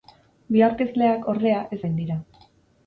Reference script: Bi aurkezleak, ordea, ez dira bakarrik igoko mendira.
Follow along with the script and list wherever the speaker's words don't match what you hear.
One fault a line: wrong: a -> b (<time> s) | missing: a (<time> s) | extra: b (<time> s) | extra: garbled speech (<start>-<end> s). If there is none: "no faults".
missing: dira bakarrik igoko (1.8 s)